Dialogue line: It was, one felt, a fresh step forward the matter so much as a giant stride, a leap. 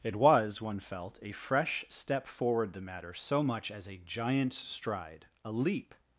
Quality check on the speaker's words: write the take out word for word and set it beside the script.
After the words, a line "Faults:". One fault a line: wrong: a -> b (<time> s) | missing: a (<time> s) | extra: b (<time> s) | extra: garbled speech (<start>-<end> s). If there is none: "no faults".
It was, one felt, a fresh step forward the matter so much as a giant stride, a leap.
Faults:
no faults